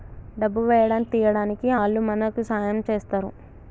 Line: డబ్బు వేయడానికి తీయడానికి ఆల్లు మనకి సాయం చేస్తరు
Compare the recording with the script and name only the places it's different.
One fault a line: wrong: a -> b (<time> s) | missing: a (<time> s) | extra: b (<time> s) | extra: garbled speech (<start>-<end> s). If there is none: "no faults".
no faults